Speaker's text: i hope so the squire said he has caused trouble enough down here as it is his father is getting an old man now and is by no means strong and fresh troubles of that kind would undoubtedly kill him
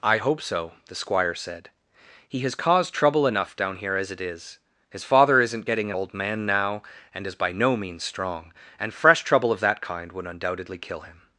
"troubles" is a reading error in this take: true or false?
true